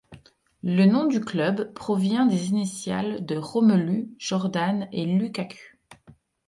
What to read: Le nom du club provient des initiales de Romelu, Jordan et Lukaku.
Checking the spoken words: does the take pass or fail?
pass